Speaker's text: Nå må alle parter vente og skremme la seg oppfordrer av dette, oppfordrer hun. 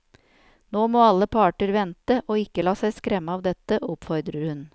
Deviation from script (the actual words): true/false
true